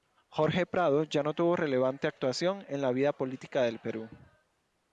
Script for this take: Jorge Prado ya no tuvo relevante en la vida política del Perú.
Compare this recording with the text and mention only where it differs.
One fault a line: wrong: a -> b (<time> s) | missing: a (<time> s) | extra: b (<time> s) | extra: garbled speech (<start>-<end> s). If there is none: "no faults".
extra: actuación (2.1 s)